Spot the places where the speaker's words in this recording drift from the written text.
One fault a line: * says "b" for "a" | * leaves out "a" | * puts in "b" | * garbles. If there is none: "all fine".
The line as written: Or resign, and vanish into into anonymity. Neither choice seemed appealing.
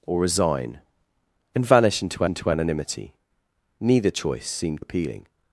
all fine